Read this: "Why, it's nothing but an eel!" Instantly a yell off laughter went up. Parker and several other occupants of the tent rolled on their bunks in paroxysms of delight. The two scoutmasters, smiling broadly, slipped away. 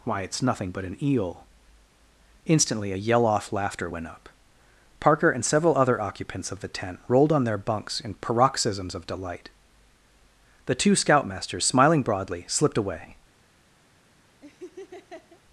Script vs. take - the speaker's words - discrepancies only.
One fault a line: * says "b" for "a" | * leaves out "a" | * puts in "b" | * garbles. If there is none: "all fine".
all fine